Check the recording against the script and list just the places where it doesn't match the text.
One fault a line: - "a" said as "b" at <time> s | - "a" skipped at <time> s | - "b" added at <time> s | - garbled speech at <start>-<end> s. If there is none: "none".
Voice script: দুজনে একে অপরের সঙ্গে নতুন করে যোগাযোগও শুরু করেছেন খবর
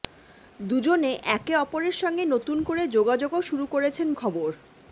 none